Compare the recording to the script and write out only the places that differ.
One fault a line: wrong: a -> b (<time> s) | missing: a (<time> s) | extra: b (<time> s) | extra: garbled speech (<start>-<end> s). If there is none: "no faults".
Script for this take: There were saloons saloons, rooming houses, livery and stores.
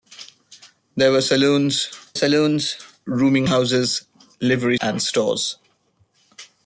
no faults